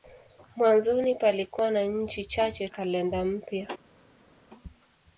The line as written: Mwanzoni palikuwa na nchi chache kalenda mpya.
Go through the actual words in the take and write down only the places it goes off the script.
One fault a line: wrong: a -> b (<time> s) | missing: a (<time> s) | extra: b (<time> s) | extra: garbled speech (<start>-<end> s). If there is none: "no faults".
no faults